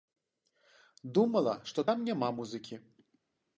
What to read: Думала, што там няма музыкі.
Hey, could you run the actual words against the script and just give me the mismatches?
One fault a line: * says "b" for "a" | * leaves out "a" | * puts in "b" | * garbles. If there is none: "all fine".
all fine